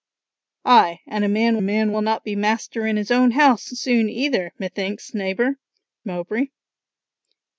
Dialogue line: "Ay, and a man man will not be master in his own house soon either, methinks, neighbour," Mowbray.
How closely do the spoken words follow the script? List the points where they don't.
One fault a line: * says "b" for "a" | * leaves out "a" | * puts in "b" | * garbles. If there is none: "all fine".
all fine